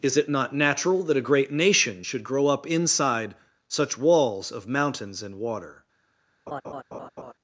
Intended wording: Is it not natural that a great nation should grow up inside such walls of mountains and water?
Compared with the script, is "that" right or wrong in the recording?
right